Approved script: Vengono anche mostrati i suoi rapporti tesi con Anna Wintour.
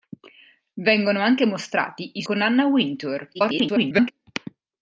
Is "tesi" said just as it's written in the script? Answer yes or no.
no